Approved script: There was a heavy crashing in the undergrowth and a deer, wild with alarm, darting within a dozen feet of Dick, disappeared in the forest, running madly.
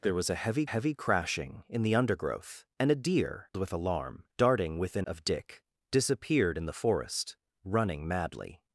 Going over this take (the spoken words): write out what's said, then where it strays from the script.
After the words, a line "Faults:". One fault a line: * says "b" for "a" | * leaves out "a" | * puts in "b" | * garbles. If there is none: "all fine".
There was a heavy heavy crashing in the undergrowth and a deer, with alarm, darting within of Dick, disappeared in the forest, running madly.
Faults:
* puts in "heavy"
* leaves out "wild"
* leaves out "a dozen feet"